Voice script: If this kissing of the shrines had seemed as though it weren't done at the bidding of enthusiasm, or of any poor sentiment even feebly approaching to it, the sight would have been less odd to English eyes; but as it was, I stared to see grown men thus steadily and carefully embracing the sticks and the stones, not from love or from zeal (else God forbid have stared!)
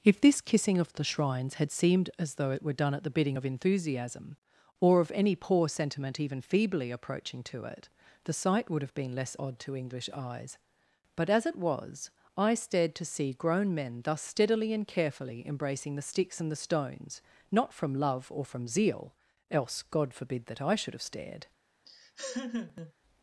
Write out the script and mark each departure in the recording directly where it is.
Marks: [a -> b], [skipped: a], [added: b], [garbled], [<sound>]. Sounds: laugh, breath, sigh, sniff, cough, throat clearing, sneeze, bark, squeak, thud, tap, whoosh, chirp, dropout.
If this kissing of the shrines had seemed as though it [weren't -> were] done at the bidding of enthusiasm, or of any poor sentiment even feebly approaching to it, the sight would have been less odd to English eyes; but as it was, I stared to see grown men thus steadily and carefully embracing the sticks and the stones, not from love or from zeal (else God forbid [added: that I should] have stared!) [laugh]